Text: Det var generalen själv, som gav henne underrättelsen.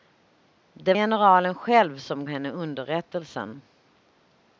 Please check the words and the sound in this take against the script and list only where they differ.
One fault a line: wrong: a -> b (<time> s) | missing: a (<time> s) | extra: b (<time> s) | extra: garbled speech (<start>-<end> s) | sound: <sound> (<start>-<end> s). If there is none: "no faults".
missing: var (0.9 s)
missing: gav (2.2 s)